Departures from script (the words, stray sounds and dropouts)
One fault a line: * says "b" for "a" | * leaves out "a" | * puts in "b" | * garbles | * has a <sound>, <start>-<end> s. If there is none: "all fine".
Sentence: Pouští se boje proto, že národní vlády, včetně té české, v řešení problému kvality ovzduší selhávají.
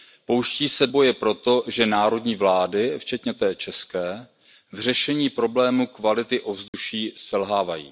* has a dropout, 6.7-6.7 s